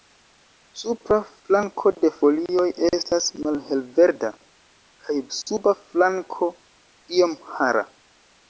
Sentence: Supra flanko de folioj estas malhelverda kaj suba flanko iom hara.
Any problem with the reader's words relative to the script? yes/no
no